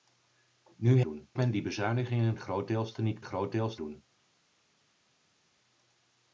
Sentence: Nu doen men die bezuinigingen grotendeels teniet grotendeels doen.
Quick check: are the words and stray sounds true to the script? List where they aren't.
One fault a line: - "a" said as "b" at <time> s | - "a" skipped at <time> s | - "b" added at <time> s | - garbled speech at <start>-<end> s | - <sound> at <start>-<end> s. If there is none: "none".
none